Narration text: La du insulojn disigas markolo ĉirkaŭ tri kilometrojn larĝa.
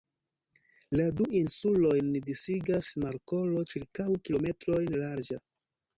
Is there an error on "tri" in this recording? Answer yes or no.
yes